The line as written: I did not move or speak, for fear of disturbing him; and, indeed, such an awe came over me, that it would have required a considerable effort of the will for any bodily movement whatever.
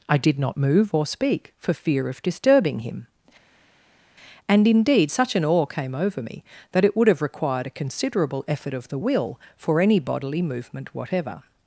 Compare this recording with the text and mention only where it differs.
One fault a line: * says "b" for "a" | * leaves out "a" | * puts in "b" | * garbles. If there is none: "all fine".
all fine